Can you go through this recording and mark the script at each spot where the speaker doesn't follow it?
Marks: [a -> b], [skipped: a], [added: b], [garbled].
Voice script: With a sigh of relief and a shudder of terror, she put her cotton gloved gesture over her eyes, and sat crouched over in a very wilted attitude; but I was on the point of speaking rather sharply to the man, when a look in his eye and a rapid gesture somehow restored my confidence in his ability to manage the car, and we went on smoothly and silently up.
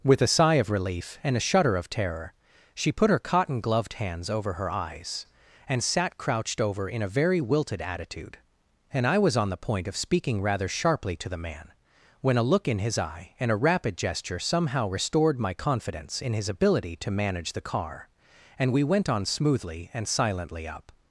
With a sigh of relief and a shudder of terror, she put her cotton gloved [gesture -> hands] over her eyes, and sat crouched over in a very wilted attitude; [but -> and] I was on the point of speaking rather sharply to the man, when a look in his eye and a rapid gesture somehow restored my confidence in his ability to manage the car, and we went on smoothly and silently up.